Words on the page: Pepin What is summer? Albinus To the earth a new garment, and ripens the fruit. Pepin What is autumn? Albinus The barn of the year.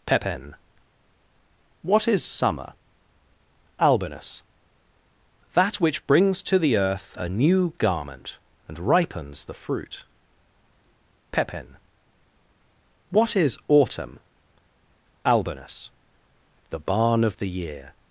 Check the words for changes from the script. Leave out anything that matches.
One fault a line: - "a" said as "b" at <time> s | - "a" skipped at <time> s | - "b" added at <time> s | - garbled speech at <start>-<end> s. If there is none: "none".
- "That which brings" added at 5.5 s